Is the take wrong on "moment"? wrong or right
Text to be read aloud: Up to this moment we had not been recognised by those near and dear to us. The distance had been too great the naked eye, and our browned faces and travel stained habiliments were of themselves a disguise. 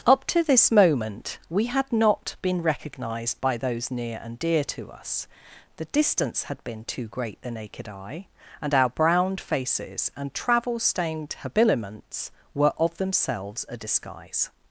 right